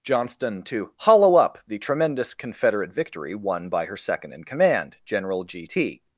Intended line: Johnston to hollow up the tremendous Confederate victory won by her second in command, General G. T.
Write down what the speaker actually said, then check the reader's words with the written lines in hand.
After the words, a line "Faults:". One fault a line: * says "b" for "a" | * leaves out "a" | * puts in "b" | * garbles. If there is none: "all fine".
Johnston to hollow up the tremendous Confederate victory won by her second in command, General G. T.
Faults:
all fine